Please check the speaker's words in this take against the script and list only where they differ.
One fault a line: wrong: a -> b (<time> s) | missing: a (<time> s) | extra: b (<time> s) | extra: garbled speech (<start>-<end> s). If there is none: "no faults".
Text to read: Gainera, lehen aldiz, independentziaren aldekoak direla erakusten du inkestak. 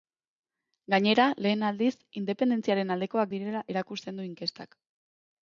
no faults